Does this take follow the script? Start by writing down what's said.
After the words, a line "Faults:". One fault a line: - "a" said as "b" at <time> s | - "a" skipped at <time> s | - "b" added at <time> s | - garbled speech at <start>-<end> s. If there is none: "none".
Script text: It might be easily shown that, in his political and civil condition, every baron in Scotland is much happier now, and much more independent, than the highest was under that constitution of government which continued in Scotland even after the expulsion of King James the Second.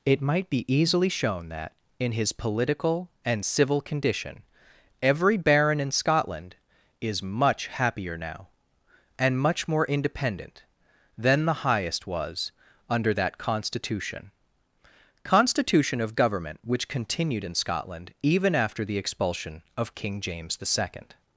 It might be easily shown that, in his political and civil condition, every baron in Scotland is much happier now, and much more independent, than the highest was under that constitution constitution of government which continued in Scotland even after the expulsion of King James the Second.
Faults:
- "constitution" added at 15.2 s